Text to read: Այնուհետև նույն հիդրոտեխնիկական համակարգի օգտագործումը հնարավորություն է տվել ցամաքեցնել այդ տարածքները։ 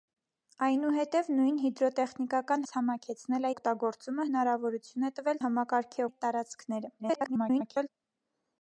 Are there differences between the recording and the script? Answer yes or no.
yes